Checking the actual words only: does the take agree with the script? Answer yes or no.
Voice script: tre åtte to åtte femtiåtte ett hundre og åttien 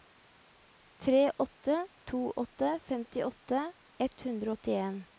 yes